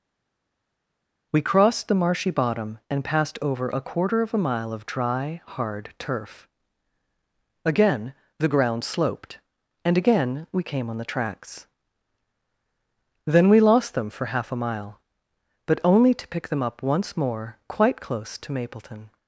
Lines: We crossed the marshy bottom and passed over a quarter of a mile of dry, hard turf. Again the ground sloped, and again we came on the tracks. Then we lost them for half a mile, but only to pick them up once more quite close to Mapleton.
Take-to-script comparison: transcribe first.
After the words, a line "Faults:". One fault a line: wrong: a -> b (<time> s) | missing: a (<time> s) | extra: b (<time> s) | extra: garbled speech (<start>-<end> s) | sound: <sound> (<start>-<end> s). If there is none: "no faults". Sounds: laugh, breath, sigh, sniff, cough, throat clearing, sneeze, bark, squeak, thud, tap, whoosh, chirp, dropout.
We crossed the marshy bottom and passed over a quarter of a mile of dry, hard turf. Again the ground sloped, and again we came on the tracks. Then we lost them for half a mile, but only to pick them up once more quite close to Mapleton.
Faults:
no faults